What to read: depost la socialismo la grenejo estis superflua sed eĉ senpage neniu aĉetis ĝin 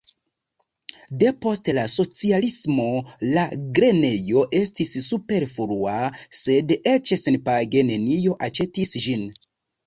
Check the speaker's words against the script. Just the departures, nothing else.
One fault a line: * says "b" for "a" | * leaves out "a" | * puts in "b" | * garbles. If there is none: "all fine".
all fine